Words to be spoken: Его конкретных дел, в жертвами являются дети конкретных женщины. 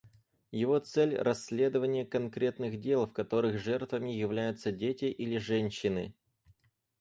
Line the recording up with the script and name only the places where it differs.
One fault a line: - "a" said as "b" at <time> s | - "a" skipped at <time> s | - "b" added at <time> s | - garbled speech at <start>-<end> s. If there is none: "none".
- "цель расследование" added at 0.8 s
- "которых" added at 3.1 s
- "конкретных" said as "или" at 5.0 s